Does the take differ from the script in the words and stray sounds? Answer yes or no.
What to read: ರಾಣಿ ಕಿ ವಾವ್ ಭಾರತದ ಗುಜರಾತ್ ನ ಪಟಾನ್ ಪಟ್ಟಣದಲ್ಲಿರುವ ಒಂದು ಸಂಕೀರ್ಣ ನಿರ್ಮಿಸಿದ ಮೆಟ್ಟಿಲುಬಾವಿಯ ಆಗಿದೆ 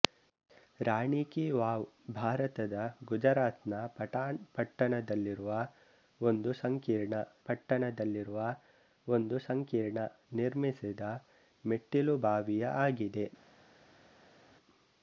yes